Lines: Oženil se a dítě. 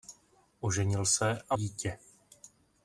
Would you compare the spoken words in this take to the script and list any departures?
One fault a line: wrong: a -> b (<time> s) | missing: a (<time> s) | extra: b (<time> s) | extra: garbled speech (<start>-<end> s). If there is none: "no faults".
no faults